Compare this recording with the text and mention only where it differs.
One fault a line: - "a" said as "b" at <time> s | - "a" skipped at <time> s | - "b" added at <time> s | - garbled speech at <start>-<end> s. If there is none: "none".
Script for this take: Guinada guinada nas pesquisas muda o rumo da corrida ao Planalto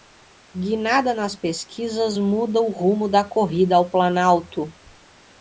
- "guinada" skipped at 1.1 s